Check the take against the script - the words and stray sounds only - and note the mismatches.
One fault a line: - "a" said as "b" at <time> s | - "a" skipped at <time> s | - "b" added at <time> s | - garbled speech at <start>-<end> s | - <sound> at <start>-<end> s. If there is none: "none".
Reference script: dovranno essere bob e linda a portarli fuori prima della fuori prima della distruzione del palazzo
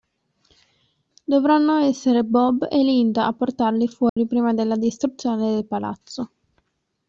- dropout at 4.1-4.2 s
- "fuori prima della" skipped at 4.8 s